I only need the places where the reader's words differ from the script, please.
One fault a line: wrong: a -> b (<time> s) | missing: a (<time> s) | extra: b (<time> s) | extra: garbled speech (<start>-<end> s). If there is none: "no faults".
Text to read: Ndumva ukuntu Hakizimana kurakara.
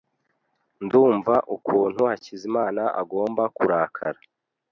extra: agomba (3.0 s)